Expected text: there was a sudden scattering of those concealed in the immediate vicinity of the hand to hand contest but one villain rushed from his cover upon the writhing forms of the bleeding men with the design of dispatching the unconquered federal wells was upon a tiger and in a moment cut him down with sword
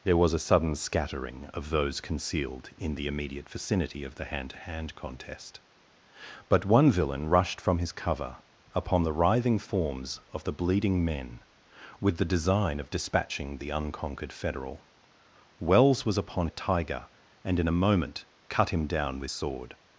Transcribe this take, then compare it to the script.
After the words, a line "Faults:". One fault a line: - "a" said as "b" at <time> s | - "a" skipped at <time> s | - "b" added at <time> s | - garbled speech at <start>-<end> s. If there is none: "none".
there was a sudden scattering of those concealed in the immediate vicinity of the hand to hand contest but one villain rushed from his cover upon the writhing forms of the bleeding men with the design of dispatching the unconquered federal wells was upon a tiger and in a moment cut him down with sword
Faults:
none